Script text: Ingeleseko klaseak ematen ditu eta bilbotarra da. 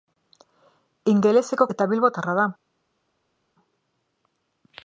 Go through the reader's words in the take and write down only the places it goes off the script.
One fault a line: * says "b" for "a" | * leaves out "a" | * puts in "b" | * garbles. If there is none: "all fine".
* leaves out "klaseak ematen ditu"